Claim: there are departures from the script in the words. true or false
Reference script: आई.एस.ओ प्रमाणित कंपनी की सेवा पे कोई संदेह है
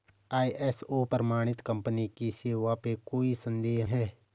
false